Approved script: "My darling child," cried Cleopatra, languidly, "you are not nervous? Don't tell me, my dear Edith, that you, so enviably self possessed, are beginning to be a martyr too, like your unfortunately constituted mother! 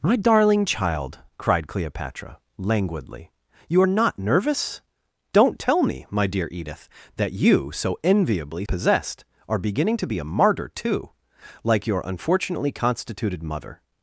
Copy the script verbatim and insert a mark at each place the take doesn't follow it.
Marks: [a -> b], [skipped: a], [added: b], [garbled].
"My darling child," cried Cleopatra, languidly, "you are not nervous? Don't tell me, my dear Edith, that you, so enviably [skipped: self] possessed, are beginning to be a martyr too, like your unfortunately constituted mother!